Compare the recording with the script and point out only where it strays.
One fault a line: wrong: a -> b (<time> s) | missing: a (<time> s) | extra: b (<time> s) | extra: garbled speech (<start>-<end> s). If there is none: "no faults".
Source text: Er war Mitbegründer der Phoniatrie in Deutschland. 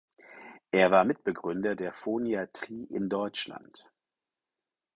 no faults